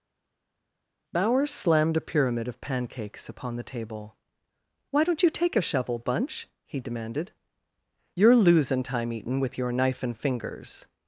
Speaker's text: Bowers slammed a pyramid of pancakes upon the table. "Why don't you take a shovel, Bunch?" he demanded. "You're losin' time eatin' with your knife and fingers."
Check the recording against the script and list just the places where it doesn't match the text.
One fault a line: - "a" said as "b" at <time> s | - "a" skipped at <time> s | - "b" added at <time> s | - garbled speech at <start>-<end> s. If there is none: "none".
none